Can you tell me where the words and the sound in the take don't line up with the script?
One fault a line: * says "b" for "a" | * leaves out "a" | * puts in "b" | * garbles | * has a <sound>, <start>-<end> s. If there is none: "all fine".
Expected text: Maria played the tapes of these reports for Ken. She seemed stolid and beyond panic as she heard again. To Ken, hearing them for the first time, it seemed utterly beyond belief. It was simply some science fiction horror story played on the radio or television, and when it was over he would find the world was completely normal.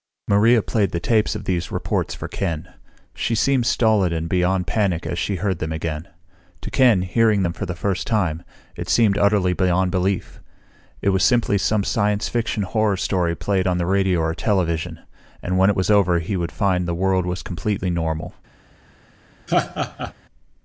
* puts in "them"
* has a laugh, 19.5-20.1 s